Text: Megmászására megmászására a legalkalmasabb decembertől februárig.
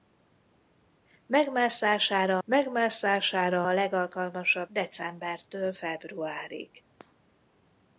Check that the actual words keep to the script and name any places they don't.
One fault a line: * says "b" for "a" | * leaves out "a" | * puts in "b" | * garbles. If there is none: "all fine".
all fine